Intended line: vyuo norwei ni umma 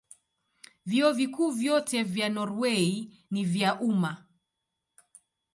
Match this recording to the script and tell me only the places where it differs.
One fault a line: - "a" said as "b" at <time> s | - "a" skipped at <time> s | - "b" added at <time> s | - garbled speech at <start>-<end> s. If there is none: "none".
- "vikuu vyote vya" added at 1.1 s
- "vya" added at 3.4 s